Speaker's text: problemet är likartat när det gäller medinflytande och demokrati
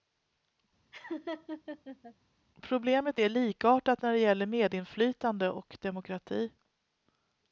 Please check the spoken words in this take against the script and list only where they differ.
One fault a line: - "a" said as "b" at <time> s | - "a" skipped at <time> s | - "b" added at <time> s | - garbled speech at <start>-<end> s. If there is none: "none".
none